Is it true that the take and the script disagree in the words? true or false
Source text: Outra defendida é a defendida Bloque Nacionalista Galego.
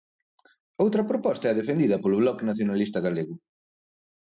true